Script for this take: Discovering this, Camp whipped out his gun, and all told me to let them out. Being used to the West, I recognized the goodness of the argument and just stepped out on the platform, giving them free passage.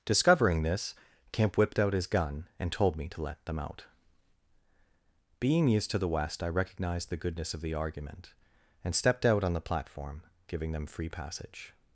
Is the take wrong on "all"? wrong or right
wrong